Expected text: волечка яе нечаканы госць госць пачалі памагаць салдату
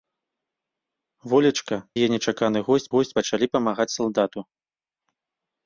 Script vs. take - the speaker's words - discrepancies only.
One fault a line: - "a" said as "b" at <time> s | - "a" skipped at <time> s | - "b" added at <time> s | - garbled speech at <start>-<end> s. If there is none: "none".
none